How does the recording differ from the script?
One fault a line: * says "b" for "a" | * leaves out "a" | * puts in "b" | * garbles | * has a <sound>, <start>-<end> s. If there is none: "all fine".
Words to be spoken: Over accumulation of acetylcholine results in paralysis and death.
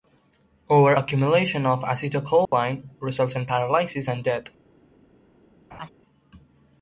* has a dropout, 2.4-2.5 s
* has a laugh, 5.7-5.9 s